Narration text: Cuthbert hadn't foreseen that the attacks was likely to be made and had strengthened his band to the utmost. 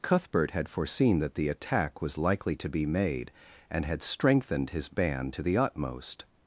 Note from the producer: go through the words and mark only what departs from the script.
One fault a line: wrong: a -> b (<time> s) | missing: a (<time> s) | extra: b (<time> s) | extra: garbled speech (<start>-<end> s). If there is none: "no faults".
wrong: hadn't -> had (0.5 s)
wrong: attacks -> attack (1.5 s)